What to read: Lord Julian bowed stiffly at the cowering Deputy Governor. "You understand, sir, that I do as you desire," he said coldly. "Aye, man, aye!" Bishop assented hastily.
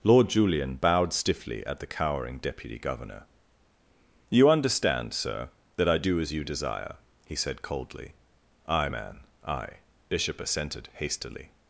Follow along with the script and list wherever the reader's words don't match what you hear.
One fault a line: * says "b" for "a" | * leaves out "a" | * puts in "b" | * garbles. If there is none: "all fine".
all fine